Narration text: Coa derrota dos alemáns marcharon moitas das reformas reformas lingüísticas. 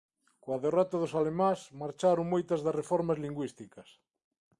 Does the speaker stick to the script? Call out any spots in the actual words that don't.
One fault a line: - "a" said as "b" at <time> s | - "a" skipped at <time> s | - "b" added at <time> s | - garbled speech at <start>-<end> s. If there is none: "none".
- "reformas" skipped at 3.2 s